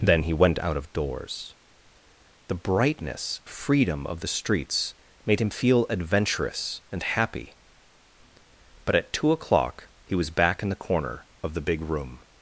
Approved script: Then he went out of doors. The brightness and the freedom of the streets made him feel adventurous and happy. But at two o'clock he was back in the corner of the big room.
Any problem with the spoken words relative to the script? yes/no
yes